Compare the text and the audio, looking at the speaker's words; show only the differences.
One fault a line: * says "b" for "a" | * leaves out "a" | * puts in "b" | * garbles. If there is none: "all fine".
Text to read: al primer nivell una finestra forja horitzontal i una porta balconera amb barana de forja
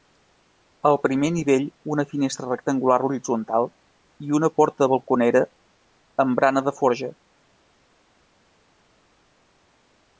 * says "rectangular" for "forja"